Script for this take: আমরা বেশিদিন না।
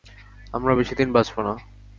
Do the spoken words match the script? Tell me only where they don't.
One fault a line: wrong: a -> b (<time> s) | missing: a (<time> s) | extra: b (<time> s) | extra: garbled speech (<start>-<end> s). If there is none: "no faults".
extra: বাঁচব (1.1 s)